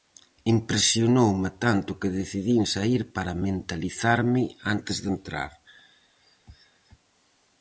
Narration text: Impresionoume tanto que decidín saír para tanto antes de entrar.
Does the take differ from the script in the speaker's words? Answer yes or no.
yes